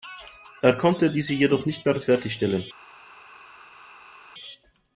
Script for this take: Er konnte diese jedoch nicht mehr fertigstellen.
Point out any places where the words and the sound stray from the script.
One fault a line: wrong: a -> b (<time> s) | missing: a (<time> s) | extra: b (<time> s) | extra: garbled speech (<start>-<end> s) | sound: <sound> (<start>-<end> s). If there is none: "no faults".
no faults